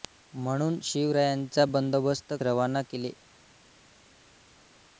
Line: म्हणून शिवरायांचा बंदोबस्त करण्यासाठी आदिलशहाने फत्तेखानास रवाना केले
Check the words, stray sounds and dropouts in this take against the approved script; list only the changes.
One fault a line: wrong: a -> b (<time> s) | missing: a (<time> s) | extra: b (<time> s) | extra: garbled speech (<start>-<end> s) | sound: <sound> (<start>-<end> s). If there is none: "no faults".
missing: करण्यासाठी आदिलशहाने फत्तेखानास (2.3 s)